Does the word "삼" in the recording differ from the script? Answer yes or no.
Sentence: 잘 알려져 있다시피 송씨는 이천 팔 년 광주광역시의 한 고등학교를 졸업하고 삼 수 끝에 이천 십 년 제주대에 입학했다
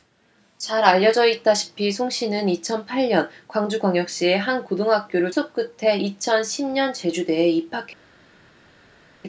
yes